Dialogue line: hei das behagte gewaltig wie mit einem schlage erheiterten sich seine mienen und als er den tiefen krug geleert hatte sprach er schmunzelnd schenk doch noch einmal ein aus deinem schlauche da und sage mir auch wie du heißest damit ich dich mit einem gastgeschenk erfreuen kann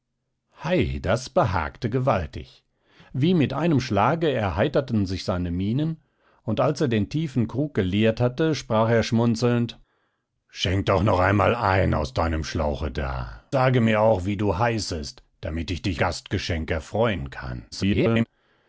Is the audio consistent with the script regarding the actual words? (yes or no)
no